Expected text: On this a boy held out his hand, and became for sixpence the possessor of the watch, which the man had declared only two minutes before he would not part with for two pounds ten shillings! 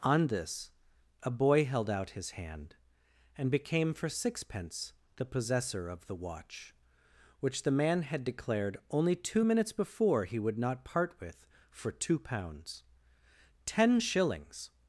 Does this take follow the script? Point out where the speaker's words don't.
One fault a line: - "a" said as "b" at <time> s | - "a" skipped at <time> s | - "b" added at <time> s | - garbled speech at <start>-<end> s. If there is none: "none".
none